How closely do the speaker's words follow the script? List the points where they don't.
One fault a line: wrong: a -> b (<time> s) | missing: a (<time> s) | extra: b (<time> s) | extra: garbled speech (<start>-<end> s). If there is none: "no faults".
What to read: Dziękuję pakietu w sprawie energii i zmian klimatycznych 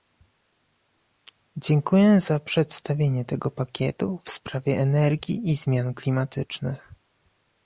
extra: za przedstawienie tego (2.2 s)